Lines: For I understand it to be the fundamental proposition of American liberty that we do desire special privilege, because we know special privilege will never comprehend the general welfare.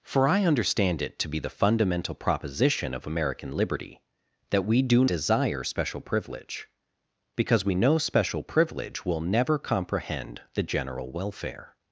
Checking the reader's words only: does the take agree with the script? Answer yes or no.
yes